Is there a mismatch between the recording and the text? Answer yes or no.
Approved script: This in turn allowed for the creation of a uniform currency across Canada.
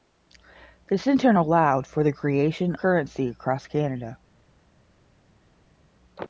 yes